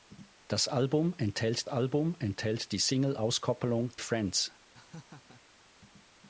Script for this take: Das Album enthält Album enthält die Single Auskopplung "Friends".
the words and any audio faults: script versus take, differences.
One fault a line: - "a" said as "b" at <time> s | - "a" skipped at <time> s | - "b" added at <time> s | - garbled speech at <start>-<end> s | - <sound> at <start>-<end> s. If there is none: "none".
- laugh at 4.7-5.4 s